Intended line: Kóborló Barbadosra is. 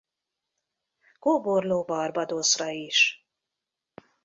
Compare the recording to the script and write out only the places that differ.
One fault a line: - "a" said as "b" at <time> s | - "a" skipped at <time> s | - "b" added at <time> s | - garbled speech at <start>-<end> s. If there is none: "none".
none